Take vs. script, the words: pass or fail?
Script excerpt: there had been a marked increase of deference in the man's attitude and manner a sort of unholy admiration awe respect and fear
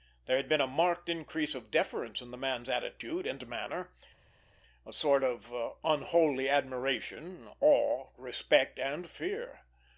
pass